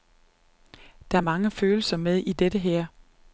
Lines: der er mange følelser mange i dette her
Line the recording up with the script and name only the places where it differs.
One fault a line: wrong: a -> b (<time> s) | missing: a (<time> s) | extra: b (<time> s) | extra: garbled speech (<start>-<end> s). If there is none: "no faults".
wrong: mange -> med (2.0 s)